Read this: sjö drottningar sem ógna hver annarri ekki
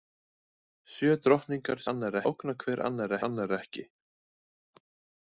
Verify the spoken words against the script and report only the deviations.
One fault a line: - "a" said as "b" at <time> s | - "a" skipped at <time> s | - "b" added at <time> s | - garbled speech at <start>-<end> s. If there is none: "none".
- "sem" said as "annarri" at 1.9 s
- "annarri" added at 3.3 s